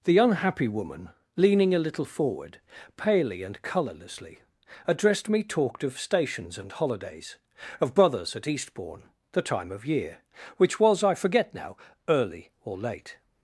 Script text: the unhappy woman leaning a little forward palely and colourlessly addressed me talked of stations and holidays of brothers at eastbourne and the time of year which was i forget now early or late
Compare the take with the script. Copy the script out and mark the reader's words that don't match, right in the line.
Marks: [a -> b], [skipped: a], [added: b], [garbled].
the unhappy woman leaning a little forward palely and colourlessly addressed me talked of stations and holidays of brothers at eastbourne [skipped: and] the time of year which was i forget now early or late